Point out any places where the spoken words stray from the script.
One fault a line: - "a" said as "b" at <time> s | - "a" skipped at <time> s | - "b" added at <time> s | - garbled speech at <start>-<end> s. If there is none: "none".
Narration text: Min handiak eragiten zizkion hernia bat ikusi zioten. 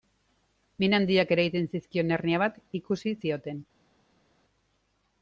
none